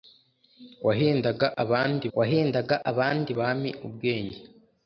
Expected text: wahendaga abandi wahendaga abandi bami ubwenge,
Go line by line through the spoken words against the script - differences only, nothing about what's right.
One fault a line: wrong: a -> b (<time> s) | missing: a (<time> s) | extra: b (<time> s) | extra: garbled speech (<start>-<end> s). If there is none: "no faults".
no faults